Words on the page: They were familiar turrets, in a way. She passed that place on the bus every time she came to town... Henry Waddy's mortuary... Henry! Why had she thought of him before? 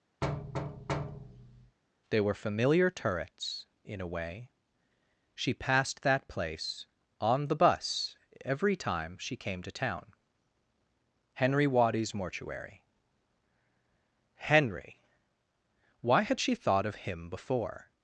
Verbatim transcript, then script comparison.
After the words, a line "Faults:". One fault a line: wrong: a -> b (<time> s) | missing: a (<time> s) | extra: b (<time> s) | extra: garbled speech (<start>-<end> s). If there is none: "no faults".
They were familiar turrets, in a way. She passed that place on the bus every time she came to town... Henry Waddy's mortuary... Henry! Why had she thought of him before?
Faults:
no faults